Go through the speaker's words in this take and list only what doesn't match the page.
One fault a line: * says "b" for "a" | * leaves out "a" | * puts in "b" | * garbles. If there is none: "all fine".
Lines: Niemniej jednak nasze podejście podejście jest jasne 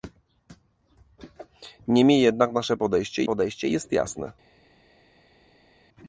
all fine